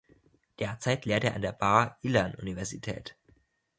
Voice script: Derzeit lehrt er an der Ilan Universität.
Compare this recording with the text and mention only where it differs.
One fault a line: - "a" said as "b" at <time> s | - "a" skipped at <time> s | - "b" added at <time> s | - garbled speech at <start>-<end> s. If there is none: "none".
- "Bar" added at 1.5 s